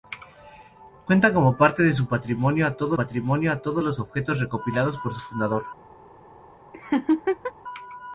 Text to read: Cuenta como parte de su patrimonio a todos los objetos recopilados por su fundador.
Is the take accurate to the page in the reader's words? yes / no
no